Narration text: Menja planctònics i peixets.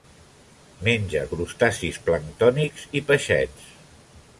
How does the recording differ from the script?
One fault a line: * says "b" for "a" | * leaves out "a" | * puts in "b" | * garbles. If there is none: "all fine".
* puts in "crustacis"